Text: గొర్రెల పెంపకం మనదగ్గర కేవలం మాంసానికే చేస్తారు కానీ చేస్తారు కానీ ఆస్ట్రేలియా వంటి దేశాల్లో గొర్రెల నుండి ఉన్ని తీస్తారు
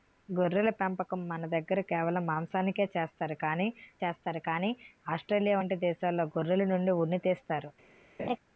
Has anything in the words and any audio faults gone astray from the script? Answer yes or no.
yes